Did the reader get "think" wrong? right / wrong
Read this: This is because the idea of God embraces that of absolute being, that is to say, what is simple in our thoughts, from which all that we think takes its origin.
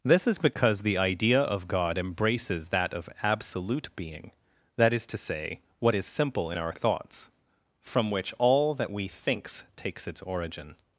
wrong